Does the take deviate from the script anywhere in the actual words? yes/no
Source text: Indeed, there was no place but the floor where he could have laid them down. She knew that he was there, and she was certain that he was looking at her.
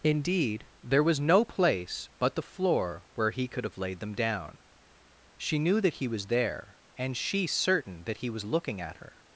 yes